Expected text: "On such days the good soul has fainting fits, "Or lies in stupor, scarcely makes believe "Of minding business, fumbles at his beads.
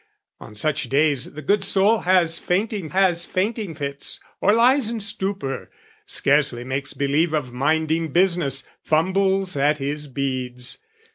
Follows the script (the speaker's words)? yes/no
no